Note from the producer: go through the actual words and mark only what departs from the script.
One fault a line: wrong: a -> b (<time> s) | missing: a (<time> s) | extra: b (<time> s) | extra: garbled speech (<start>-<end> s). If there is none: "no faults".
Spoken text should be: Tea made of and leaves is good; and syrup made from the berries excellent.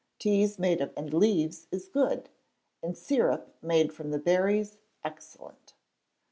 no faults